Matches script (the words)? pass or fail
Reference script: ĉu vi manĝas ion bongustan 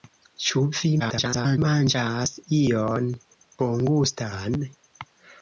fail